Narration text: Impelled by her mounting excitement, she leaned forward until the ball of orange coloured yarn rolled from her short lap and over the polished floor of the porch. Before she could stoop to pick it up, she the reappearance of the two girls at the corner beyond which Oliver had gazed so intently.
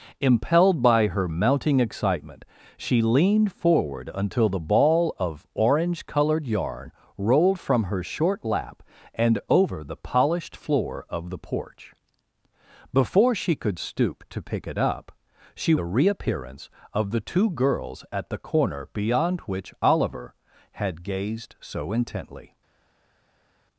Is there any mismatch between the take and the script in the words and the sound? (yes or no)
no